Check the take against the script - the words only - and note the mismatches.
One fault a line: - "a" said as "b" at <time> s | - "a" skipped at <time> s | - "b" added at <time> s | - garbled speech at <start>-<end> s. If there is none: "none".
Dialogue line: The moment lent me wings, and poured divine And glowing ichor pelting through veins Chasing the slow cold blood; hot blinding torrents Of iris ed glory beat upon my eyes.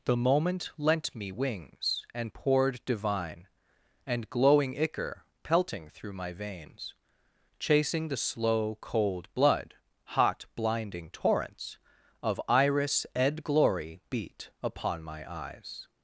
- "my" added at 6.1 s